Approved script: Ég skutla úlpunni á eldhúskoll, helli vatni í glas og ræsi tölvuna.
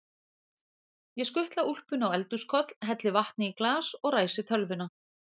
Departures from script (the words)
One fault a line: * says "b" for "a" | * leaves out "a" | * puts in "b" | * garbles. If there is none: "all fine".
all fine